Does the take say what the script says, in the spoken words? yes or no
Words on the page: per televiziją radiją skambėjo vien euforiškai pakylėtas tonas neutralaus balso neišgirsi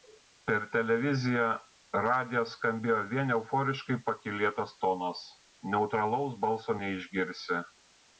yes